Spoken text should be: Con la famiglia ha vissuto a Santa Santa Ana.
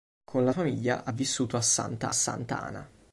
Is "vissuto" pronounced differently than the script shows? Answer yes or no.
no